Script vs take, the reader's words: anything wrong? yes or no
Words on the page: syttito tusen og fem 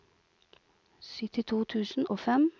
no